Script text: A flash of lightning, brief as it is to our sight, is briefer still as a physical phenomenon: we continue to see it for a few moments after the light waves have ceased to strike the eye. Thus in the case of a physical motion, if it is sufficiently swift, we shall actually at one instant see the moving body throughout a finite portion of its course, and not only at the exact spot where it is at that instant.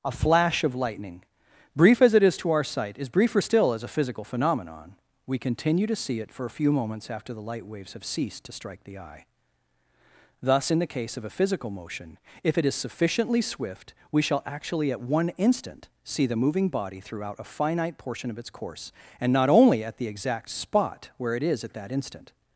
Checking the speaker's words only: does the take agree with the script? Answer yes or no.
yes